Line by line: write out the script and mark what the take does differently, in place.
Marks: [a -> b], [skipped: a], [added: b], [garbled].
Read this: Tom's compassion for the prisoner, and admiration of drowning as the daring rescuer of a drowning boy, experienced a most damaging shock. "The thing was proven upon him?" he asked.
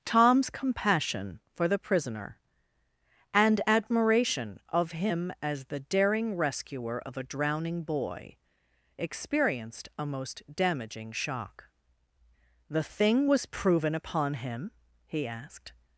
Tom's compassion for the prisoner, and admiration of [drowning -> him] as the daring rescuer of a drowning boy, experienced a most damaging shock. "The thing was proven upon him?" he asked.